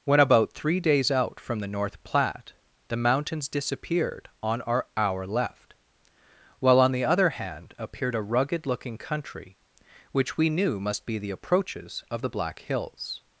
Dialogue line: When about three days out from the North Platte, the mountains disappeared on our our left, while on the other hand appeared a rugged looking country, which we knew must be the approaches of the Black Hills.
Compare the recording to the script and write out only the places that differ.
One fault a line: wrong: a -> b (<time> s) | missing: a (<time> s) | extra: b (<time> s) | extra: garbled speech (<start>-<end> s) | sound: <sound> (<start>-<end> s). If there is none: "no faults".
no faults